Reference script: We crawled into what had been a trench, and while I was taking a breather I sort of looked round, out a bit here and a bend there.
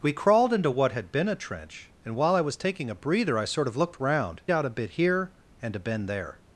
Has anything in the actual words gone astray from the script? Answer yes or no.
no